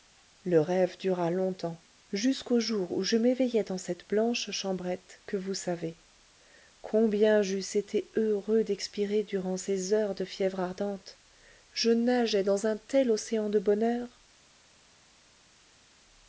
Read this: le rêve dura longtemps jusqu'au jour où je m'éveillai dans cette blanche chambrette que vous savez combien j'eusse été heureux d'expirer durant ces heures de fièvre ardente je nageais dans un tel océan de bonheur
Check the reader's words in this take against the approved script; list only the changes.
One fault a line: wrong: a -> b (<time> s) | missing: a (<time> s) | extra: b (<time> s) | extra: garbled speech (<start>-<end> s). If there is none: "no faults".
no faults